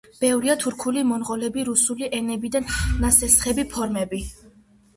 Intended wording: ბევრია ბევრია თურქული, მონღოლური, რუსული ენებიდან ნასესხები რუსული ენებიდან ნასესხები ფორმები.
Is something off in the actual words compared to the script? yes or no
yes